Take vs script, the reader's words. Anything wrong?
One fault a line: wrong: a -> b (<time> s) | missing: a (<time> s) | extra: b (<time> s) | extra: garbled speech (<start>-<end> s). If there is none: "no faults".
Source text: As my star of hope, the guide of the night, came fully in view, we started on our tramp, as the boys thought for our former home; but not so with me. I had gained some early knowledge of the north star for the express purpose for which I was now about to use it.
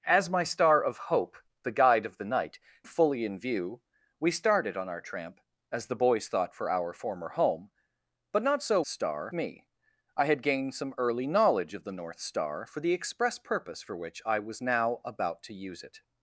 missing: came (2.6 s)
wrong: with -> star (8.9 s)